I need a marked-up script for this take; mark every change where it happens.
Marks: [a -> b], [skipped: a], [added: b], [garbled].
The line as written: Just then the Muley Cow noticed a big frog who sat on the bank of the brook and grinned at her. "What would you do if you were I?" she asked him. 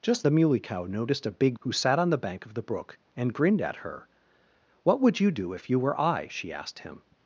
Just [skipped: then] the Muley Cow noticed a big [skipped: frog] who sat on the bank of the brook and grinned at her. "What would you do if you were I?" she asked him.